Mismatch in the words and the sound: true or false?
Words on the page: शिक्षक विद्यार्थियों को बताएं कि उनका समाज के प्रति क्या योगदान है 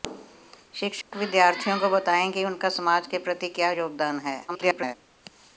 true